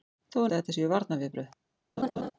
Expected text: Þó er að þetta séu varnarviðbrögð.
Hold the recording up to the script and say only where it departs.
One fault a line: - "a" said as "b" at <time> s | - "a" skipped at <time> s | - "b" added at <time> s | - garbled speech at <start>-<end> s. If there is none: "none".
none